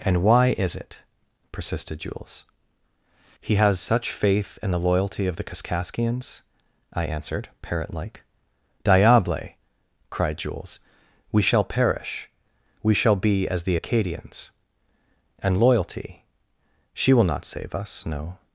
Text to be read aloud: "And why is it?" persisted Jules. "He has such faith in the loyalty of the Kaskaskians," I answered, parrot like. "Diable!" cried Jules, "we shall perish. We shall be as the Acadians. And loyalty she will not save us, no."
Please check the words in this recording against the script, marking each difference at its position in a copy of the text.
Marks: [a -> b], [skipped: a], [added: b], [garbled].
"And why is it?" persisted Jules. "He has such faith in the loyalty of the Kaskaskians," I answered, parrot like. "Diable!" cried Jules, "we shall perish. We shall be as the Acadians. And loyalty she will not save us, no."